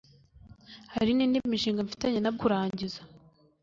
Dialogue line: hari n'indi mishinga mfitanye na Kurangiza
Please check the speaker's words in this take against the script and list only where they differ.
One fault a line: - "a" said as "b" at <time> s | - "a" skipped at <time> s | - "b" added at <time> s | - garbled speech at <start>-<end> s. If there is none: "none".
none